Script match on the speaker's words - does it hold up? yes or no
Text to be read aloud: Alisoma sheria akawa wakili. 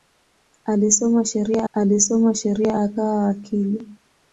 no